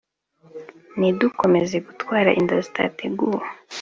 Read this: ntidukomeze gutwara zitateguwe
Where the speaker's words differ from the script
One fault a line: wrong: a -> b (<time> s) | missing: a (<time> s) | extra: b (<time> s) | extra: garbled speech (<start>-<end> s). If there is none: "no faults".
extra: inda (2.4 s)